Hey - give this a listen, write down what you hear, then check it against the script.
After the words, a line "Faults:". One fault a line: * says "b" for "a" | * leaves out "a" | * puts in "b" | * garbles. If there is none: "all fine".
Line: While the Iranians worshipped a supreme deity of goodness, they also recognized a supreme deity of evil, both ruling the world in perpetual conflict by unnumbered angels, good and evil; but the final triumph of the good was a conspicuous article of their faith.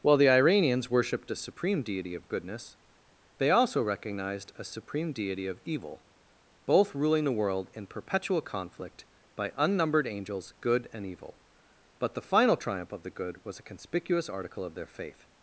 While the Iranians worshipped a supreme deity of goodness, they also recognized a supreme deity of evil, both ruling the world in perpetual conflict by unnumbered angels, good and evil; but the final triumph of the good was a conspicuous article of their faith.
Faults:
all fine